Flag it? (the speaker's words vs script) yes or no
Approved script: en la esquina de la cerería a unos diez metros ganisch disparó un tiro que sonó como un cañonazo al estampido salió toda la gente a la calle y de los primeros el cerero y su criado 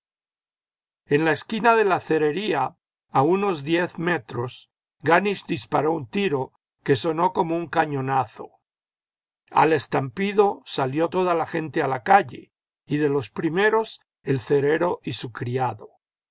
no